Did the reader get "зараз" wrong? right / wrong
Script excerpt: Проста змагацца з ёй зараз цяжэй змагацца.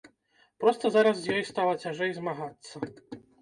wrong